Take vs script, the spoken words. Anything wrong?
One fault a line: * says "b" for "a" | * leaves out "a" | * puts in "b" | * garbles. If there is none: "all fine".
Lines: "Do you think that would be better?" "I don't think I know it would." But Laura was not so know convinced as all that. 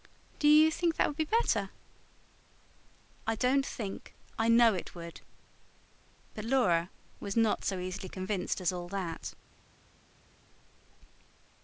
* says "easily" for "know"